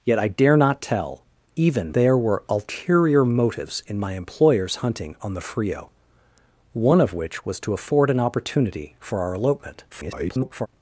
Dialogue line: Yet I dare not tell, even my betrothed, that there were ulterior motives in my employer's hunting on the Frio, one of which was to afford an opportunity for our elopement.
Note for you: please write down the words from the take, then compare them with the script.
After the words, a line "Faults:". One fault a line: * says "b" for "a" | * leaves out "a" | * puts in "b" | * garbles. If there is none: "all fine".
Yet I dare not tell, even there were ulterior motives in my employer's hunting on the Frio, one of which was to afford an opportunity for our elopement. [garbled]
Faults:
* leaves out "my betrothed that"
* garbles